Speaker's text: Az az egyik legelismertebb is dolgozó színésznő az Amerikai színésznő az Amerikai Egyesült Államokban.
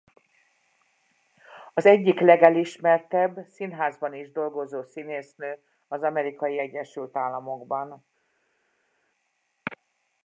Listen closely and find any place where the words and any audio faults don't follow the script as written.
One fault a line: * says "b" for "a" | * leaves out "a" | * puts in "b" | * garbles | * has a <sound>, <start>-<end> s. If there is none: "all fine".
* leaves out "az"
* puts in "színházban"
* leaves out "színésznő az Amerikai"